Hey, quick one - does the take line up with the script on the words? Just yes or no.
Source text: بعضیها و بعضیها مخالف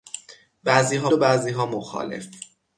yes